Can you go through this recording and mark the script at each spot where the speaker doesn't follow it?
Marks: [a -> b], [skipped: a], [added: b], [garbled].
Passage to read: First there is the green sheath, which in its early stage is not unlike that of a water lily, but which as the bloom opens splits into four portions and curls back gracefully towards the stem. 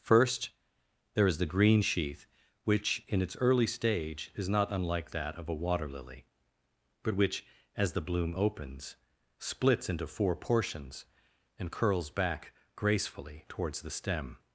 First there is the green sheath, which in its early stage is not unlike that of a water lily, but which as the bloom opens splits into four portions and curls back gracefully towards the stem.